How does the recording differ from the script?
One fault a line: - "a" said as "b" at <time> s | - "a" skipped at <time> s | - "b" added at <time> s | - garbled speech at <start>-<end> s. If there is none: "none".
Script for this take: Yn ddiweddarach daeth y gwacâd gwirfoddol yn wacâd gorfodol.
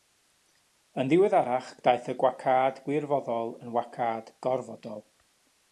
none